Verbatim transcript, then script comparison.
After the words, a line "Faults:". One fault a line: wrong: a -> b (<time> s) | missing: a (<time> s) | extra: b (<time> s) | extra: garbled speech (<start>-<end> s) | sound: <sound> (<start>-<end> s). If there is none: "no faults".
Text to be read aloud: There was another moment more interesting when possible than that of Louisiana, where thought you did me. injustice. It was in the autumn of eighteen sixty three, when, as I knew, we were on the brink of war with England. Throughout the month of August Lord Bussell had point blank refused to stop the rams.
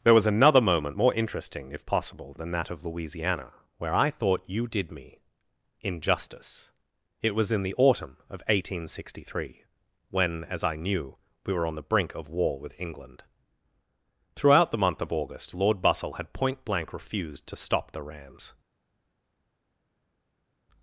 There was another moment more interesting if possible than that of Louisiana, where I thought you did me. injustice. It was in the autumn of eighteen sixty three, when, as I knew, we were on the brink of war with England. Throughout the month of August Lord Bussell had point blank refused to stop the rams.
Faults:
wrong: when -> if (1.7 s)
extra: I (3.9 s)